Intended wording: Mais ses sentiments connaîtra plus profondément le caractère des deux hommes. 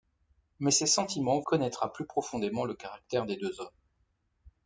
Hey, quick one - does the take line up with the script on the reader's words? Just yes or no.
yes